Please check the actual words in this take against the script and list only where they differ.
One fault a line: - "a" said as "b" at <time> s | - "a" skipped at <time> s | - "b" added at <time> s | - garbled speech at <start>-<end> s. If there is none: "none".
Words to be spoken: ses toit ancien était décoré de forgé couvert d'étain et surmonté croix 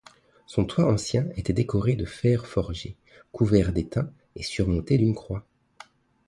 - "ses" said as "son" at 0.5 s
- "fer" added at 2.1 s
- "d'une" added at 4.9 s